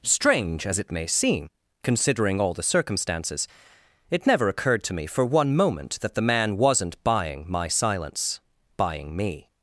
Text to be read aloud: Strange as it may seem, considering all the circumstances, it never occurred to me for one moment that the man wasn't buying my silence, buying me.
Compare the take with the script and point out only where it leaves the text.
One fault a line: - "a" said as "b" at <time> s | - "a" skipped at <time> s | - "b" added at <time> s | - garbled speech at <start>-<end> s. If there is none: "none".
none